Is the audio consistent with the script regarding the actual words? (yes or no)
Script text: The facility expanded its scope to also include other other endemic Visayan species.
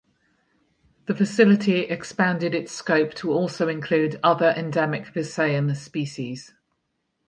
no